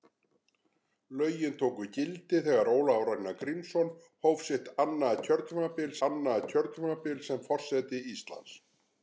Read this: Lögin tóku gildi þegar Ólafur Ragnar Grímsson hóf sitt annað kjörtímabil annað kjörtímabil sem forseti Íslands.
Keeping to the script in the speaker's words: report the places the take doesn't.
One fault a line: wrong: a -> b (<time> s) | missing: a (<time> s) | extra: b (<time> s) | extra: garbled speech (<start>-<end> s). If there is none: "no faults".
no faults